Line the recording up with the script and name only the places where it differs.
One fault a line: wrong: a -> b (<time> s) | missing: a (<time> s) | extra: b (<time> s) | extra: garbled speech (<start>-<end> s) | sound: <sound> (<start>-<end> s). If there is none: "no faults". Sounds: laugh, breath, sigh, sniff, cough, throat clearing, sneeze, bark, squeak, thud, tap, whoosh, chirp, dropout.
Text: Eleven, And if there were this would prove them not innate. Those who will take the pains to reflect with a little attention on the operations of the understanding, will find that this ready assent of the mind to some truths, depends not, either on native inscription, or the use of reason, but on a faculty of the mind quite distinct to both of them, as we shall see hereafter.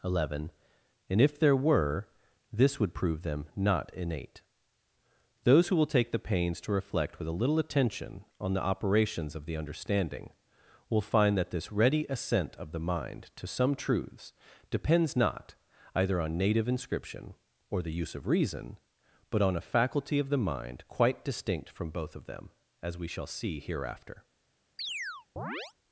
wrong: to -> from (21.7 s)
sound: chirp (24.8-25.7 s)